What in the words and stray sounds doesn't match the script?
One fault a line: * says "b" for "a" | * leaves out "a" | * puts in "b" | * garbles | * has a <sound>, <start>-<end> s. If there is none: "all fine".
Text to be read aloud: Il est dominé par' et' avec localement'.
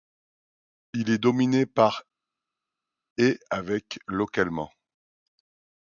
all fine